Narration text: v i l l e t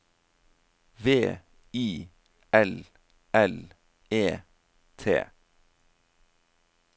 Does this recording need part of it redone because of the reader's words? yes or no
no